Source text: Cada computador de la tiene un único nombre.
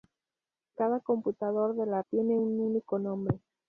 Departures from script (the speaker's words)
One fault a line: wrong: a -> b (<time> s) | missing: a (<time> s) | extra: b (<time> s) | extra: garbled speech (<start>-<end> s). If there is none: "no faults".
no faults